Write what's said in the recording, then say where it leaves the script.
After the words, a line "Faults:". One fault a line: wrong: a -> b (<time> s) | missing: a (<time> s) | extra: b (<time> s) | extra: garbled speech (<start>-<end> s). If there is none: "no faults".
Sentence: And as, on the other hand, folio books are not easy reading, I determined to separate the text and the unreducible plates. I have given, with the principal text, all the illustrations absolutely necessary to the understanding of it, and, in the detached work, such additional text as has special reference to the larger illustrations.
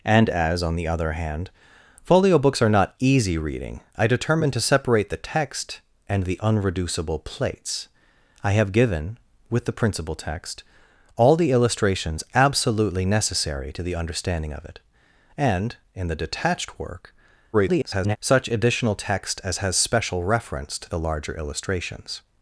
And as, on the other hand, folio books are not easy reading, I determined to separate the text and the unreducible plates. I have given, with the principal text, all the illustrations absolutely necessary to the understanding of it, and, in the detached work, [garbled] such additional text as has special reference to the larger illustrations.
Faults:
extra: garbled speech (17.5-18.2 s)